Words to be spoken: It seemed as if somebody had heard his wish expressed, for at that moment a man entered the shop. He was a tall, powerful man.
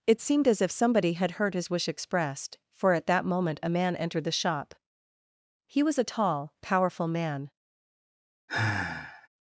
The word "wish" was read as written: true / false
true